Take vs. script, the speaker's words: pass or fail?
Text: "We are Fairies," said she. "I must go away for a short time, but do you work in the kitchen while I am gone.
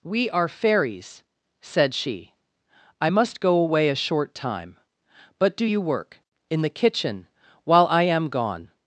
fail